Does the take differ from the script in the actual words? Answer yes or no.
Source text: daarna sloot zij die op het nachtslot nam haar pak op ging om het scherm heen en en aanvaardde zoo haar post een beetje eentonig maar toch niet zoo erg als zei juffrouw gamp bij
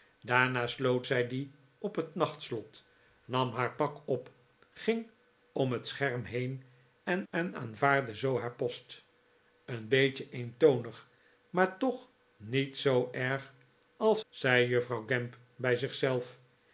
no